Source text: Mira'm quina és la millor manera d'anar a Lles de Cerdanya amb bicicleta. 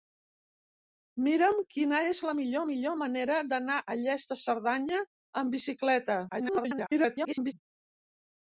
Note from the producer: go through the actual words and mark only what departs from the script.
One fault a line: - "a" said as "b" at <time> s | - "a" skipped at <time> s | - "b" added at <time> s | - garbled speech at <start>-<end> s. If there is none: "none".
- "millor" added at 2.7 s
- garbled speech at 6.3-7.5 s